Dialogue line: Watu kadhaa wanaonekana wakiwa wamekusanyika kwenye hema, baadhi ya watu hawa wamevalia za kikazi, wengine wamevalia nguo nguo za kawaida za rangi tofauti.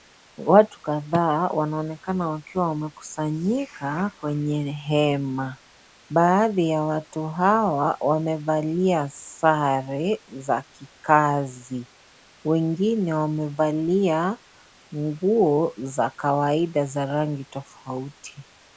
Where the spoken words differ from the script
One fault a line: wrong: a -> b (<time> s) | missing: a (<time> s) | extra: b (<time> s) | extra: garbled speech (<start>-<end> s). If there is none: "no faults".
extra: sare (9.1 s)
missing: nguo (15.7 s)